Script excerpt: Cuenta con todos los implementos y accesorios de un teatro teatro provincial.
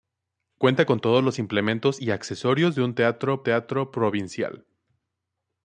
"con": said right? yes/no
yes